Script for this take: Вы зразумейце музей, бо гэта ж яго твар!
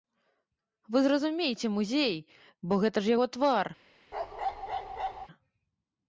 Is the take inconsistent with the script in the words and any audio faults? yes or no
yes